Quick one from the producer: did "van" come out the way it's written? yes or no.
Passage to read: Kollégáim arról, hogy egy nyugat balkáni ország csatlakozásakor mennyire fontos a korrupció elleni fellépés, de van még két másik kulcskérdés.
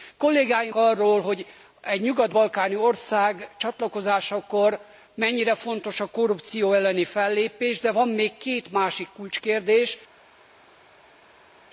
yes